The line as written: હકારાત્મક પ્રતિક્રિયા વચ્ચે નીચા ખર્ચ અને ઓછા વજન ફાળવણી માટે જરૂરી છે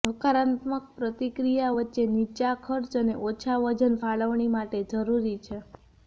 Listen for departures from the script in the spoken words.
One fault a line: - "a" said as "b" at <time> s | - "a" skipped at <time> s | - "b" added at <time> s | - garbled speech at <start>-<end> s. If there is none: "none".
none